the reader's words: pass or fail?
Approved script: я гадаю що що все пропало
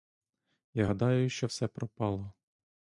fail